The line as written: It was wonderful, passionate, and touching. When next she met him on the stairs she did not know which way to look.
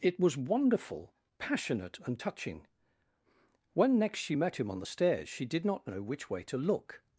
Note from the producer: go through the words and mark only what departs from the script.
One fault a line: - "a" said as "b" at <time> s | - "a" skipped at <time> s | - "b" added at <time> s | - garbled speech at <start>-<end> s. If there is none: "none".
none